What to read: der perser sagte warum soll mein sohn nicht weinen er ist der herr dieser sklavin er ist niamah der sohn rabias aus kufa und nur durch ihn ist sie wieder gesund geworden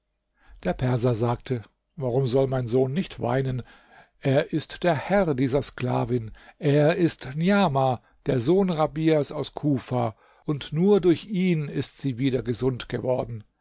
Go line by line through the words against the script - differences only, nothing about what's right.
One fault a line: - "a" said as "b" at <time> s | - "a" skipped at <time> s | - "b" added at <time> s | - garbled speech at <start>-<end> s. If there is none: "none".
none